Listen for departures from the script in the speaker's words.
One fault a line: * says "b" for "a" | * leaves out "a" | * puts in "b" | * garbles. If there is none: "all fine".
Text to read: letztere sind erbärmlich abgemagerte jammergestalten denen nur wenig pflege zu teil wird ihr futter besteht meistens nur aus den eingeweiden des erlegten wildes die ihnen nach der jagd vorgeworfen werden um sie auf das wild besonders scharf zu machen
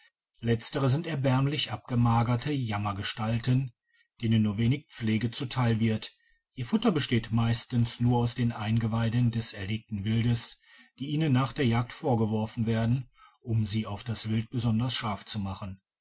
all fine